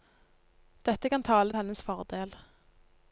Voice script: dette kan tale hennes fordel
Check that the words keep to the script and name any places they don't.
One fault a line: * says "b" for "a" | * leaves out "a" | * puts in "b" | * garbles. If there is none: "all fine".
all fine